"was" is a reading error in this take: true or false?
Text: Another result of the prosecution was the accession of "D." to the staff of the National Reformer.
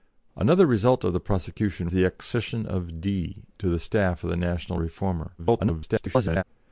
true